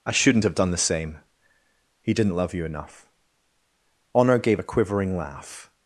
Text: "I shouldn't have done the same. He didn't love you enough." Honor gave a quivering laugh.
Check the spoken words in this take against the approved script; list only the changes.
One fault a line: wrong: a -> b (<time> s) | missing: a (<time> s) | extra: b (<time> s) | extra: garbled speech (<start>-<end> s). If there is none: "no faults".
no faults